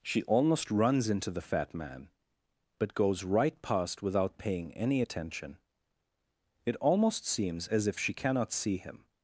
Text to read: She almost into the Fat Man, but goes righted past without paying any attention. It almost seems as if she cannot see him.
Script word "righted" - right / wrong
wrong